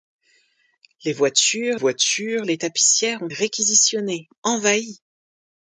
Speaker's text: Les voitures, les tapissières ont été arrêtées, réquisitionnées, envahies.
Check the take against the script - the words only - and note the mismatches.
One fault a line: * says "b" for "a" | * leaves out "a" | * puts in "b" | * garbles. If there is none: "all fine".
* puts in "voitures"
* leaves out "été arrêtées"